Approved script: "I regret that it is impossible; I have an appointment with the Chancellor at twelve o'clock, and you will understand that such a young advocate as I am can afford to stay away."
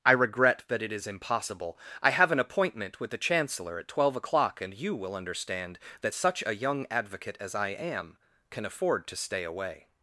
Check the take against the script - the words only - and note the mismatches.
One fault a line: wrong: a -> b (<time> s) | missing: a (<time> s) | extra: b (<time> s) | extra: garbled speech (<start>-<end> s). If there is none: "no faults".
no faults